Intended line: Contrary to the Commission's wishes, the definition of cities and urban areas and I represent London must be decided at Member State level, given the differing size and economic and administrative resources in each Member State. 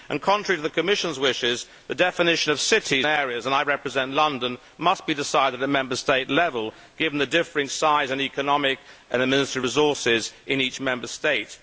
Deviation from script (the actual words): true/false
true